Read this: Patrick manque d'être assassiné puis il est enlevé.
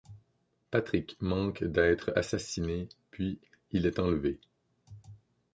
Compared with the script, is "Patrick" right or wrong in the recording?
right